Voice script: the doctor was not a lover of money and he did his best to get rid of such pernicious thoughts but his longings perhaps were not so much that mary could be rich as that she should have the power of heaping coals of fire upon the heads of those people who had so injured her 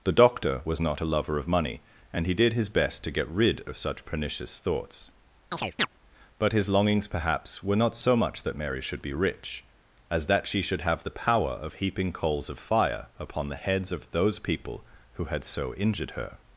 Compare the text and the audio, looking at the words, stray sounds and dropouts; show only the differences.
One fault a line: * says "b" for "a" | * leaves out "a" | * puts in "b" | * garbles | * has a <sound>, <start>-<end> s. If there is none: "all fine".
* has a chirp, 5.5-5.9 s
* says "should" for "could"